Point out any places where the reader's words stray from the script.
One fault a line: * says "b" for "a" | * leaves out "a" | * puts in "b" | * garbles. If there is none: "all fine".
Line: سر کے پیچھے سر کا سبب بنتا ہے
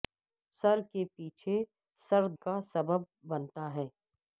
all fine